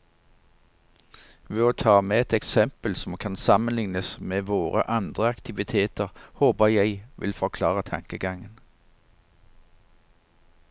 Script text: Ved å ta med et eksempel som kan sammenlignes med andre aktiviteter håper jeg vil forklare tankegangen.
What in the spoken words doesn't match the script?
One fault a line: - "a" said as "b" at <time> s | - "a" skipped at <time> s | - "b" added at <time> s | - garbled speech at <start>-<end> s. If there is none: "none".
- "våre" added at 4.5 s